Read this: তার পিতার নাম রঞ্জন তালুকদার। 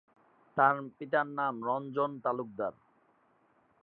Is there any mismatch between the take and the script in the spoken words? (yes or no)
no